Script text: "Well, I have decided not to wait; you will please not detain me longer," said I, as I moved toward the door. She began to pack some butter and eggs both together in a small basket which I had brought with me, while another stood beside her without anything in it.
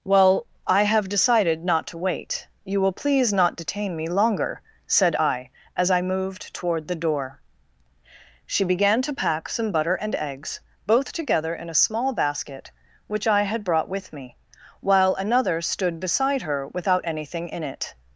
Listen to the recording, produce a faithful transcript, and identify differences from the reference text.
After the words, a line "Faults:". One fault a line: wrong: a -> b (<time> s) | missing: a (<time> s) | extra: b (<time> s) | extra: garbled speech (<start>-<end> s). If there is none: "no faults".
"Well, I have decided not to wait; you will please not detain me longer," said I, as I moved toward the door. She began to pack some butter and eggs both together in a small basket which I had brought with me, while another stood beside her without anything in it.
Faults:
no faults